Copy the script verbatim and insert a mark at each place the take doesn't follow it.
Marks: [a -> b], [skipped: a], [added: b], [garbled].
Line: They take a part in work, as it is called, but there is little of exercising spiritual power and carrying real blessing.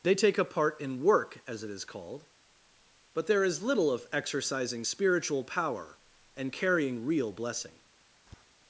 They take a part in work, as it is called, but there is little of exercising spiritual power and carrying real blessing.